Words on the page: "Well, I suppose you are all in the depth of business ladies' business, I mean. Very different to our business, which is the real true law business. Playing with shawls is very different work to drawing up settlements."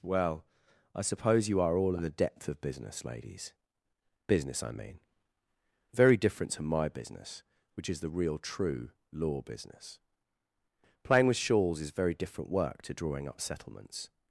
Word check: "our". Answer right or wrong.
wrong